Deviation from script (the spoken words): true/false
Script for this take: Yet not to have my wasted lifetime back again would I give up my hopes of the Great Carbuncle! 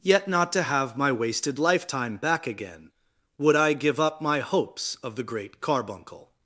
false